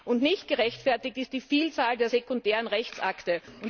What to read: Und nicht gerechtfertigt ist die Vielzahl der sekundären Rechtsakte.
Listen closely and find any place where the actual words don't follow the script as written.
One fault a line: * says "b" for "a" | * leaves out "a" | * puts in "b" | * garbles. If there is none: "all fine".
all fine